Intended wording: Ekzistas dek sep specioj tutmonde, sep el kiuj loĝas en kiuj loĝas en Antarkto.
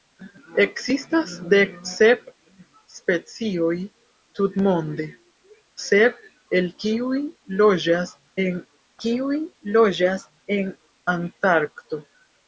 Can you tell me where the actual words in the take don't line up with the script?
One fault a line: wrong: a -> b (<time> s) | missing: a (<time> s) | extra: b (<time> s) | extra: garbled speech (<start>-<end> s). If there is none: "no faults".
no faults